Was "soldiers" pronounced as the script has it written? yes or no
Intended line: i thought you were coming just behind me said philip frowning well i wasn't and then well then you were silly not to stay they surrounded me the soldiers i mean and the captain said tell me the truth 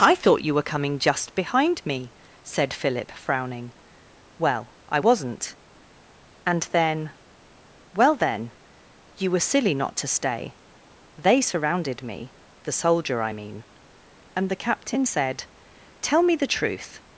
no